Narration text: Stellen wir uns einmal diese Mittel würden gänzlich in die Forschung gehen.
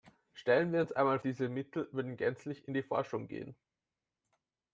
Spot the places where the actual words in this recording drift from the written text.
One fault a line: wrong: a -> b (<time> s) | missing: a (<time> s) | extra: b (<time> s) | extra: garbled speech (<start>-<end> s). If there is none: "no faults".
no faults